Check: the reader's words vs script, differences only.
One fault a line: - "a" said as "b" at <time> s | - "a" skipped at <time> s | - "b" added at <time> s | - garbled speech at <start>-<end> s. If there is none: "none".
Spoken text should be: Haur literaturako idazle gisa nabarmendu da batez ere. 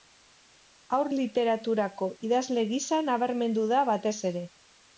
none